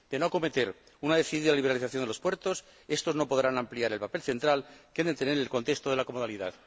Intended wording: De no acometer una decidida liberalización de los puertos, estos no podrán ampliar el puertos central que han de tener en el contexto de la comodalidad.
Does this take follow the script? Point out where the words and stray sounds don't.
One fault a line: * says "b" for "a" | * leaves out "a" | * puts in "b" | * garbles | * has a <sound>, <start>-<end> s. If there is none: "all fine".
* says "papel" for "puertos"